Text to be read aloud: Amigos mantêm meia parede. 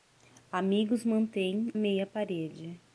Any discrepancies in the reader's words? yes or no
no